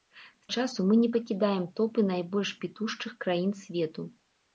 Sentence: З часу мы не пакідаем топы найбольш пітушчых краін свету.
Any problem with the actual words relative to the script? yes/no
no